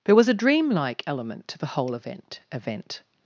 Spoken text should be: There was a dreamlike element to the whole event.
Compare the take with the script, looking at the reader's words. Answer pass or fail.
fail